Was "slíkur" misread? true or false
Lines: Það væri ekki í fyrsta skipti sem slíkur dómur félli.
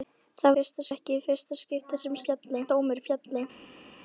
true